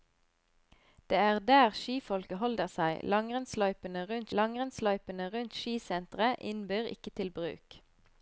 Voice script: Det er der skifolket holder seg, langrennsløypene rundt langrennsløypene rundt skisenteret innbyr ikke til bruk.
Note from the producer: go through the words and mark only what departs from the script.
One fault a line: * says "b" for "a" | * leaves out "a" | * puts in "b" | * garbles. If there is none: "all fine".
all fine